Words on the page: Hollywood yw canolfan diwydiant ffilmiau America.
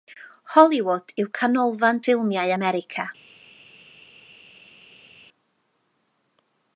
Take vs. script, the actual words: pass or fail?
fail